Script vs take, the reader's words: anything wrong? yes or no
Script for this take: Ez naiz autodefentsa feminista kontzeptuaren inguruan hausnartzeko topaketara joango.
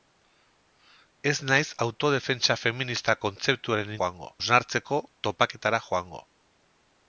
yes